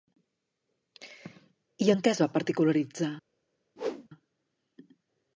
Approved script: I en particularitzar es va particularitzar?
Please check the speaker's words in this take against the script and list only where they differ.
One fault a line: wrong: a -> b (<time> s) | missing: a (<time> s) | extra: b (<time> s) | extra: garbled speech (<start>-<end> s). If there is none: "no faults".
wrong: particularitzar -> què (2.0 s)